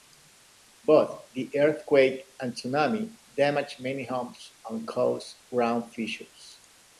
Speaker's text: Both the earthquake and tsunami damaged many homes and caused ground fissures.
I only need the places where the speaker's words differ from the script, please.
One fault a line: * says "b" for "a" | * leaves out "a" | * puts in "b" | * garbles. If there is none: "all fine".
all fine